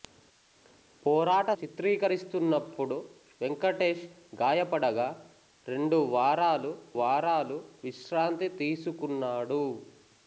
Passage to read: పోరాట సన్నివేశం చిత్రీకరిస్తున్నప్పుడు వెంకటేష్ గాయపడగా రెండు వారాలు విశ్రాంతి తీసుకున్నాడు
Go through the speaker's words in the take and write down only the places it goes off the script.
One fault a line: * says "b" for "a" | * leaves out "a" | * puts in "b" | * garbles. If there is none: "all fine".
* leaves out "సన్నివేశం"
* puts in "వారాలు"